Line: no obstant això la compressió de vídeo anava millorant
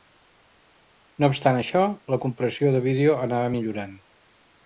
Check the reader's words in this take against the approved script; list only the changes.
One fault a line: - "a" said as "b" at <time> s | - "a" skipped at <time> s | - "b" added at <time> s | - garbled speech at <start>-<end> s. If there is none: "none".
none